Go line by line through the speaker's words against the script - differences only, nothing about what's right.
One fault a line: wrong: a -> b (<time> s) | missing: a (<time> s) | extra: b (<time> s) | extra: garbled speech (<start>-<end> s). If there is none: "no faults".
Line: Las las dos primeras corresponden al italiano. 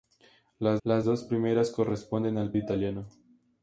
no faults